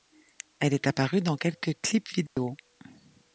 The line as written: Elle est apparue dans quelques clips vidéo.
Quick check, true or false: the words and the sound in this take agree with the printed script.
false